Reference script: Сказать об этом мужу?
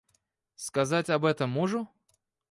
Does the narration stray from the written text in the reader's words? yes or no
no